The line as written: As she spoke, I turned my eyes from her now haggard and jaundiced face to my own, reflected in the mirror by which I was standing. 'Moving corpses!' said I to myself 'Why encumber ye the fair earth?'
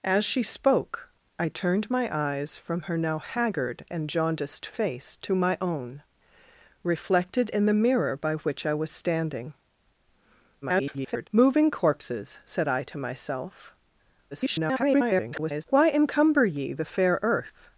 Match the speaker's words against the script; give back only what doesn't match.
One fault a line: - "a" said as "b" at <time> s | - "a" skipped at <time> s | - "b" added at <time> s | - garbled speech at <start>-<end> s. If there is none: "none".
- garbled speech at 10.6-11.3 s
- garbled speech at 14.3-15.7 s